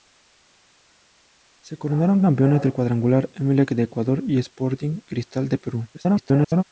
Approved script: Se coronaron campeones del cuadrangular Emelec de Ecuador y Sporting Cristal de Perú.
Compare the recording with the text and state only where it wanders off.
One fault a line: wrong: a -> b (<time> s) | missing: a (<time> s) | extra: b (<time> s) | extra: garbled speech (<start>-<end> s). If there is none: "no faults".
extra: garbled speech (5.9-6.6 s)